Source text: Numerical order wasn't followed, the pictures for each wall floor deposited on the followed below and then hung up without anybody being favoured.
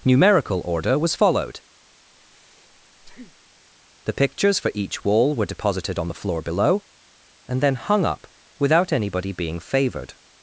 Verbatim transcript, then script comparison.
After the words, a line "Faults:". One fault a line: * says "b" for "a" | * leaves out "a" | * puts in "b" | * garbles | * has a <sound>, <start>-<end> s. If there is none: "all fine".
Numerical order was followed, the pictures for each wall were deposited on the floor below and then hung up without anybody being favoured.
Faults:
* says "was" for "wasn't"
* has a breath, 2.1-3.6 s
* says "were" for "floor"
* says "floor" for "followed"